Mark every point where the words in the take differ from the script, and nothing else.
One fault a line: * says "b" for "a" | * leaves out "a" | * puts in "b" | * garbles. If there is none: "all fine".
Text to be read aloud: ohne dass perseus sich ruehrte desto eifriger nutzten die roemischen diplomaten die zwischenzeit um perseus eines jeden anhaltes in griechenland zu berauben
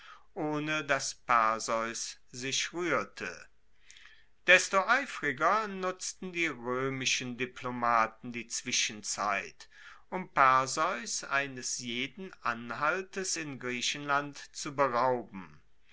all fine